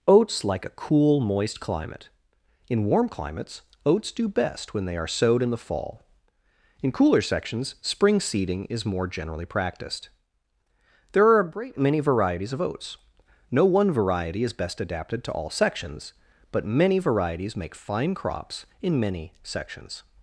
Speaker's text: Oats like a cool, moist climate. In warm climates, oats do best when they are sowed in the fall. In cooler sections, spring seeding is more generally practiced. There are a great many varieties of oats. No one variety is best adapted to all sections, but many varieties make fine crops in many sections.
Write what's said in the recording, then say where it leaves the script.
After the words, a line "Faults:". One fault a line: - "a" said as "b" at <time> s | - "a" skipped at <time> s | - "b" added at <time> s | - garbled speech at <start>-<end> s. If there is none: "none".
Oats like a cool, moist climate. In warm climates, oats do best when they are sowed in the fall. In cooler sections, spring seeding is more generally practiced. There are a great many varieties of oats. No one variety is best adapted to all sections, but many varieties make fine crops in many sections.
Faults:
none